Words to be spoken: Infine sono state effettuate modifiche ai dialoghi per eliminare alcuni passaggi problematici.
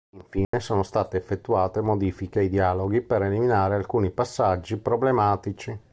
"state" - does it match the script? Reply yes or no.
yes